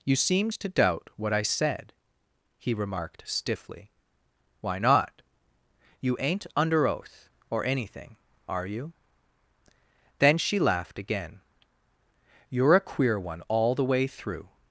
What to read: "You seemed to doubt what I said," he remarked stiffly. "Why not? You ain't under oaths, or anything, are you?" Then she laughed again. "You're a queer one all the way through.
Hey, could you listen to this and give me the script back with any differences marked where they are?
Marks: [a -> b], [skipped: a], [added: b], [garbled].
"You seemed to doubt what I said," he remarked stiffly. "Why not? You ain't under [oaths, -> oath] or anything, are you?" Then she laughed again. "You're a queer one all the way through.